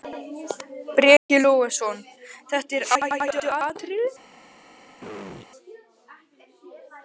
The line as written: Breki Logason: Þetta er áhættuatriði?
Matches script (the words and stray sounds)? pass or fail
fail